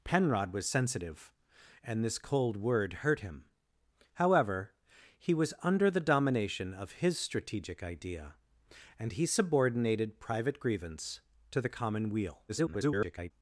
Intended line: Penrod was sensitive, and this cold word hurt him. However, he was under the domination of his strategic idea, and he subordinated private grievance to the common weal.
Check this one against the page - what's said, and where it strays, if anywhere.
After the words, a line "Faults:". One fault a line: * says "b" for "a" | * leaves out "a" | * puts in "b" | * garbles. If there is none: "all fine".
Penrod was sensitive, and this cold word hurt him. However, he was under the domination of his strategic idea, and he subordinated private grievance to the common weal. [garbled]
Faults:
* garbles